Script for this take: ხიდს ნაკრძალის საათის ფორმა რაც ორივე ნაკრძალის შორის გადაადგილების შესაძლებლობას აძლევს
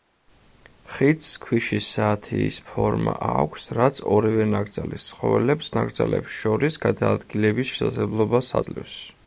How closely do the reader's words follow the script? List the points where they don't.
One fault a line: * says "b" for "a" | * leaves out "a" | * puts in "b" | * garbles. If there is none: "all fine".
* says "ქვიშის" for "ნაკრძალის"
* puts in "აქვს"
* puts in "ცხოველებს ნაკრძალებს"